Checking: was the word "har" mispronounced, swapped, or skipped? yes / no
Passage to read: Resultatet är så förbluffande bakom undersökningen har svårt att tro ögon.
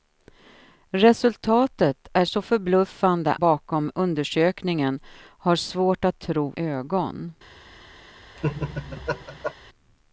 no